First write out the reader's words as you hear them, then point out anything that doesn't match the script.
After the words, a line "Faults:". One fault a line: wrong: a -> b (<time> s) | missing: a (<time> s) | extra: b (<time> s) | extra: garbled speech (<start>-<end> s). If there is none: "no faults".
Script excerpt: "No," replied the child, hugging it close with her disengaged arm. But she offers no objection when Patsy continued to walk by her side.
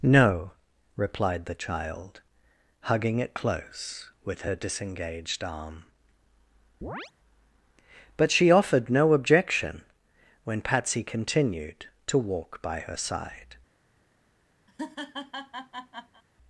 "No," replied the child, hugging it close with her disengaged arm. But she offered no objection when Patsy continued to walk by her side.
Faults:
wrong: offers -> offered (8.5 s)